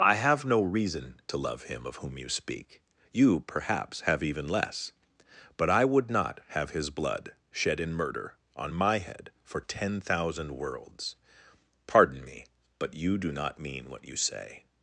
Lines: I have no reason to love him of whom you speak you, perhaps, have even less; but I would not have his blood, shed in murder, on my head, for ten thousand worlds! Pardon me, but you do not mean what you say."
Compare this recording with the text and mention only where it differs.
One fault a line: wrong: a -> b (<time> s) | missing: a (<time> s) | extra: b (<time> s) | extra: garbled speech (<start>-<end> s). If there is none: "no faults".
no faults